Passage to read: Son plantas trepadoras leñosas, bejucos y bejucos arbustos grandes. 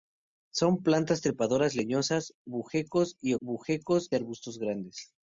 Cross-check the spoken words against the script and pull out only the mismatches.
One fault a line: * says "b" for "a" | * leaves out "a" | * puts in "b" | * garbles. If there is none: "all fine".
all fine